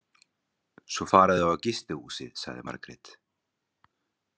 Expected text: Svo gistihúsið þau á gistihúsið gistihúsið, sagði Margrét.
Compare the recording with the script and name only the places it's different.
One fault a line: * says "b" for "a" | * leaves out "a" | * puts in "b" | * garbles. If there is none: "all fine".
* says "fara" for "gistihúsið"
* leaves out "gistihúsið"